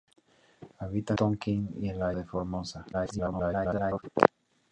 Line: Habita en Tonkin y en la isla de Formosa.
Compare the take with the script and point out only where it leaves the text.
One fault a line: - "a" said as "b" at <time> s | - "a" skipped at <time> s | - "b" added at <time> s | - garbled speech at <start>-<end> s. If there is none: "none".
- "en" skipped at 1.1 s
- "isla" skipped at 2.1 s
- garbled speech at 2.9-4.0 s